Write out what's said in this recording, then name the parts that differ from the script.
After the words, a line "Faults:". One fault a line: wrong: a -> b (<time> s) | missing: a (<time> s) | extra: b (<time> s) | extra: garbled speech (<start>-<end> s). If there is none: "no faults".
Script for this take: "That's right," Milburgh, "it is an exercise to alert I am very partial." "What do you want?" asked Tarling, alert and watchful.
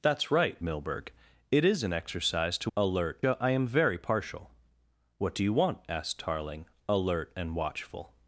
"That's right," Milburgh, "it is an exercise to alert I am very partial." "What do you want?" asked Tarling, alert and watchful.
Faults:
no faults